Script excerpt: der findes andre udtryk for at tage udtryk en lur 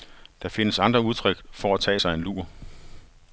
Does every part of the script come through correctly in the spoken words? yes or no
no